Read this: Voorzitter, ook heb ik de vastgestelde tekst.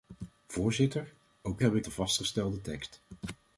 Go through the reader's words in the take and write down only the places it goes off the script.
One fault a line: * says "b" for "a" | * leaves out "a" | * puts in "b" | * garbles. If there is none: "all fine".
all fine